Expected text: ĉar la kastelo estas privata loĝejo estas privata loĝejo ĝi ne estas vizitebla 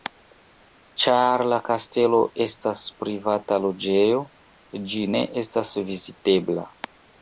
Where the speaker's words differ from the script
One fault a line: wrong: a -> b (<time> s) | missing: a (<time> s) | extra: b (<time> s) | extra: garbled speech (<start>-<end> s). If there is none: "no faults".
missing: estas privata loĝejo (4.3 s)